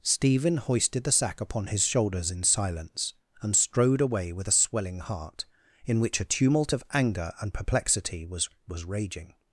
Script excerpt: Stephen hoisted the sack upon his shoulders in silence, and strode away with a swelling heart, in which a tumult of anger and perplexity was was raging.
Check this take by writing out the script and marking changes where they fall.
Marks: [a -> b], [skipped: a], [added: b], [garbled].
Stephen hoisted the sack upon his shoulders in silence, and strode away with a swelling heart, in which a tumult of anger and perplexity was was raging.